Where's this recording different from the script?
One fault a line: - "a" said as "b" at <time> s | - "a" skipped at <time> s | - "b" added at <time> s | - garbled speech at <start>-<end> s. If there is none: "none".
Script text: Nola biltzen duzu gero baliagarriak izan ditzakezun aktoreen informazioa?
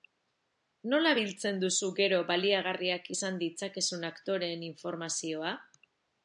none